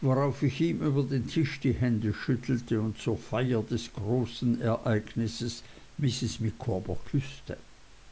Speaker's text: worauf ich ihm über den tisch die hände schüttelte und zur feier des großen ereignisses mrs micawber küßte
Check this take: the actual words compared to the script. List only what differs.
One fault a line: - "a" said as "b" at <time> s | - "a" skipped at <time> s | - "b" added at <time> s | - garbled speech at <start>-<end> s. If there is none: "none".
none